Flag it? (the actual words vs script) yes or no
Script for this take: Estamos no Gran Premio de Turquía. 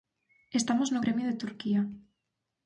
yes